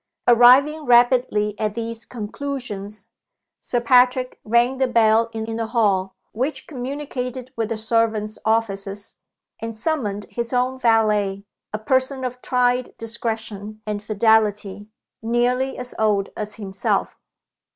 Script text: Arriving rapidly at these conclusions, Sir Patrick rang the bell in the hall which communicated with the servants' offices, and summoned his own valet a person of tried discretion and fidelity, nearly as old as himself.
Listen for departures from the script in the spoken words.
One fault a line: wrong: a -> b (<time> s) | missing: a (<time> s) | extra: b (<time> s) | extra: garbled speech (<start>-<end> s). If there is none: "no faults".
extra: in (5.4 s)